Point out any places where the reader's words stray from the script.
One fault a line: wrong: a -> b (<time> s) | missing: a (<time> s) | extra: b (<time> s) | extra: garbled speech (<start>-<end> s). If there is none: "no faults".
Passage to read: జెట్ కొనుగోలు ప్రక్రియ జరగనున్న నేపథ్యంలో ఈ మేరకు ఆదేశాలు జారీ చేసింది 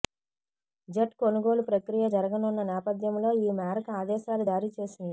no faults